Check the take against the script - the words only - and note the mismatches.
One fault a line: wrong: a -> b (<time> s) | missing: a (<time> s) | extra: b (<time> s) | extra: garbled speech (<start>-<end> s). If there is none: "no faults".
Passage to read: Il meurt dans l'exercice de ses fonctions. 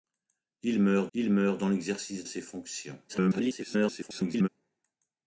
extra: il meurt (1.1 s)
missing: de (2.2 s)
extra: garbled speech (3.1-4.5 s)